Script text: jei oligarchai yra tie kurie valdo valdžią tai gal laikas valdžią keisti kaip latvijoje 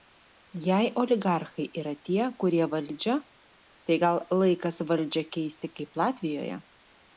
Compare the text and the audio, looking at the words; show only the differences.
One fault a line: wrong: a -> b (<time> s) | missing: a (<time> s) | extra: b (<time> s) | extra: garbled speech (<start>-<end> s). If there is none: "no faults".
missing: valdo (2.7 s)